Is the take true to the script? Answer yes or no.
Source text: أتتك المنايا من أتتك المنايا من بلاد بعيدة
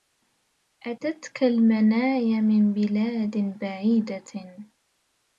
no